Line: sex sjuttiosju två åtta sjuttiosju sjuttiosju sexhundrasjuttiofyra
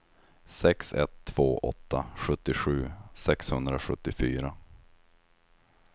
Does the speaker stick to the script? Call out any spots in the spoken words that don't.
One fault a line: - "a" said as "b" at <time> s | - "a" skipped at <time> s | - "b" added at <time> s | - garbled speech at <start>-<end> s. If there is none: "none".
- "sjuttiosju" said as "ett" at 0.9 s
- "sjuttiosju" skipped at 2.9 s